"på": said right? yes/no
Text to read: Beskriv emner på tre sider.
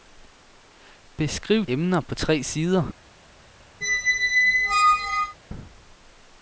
yes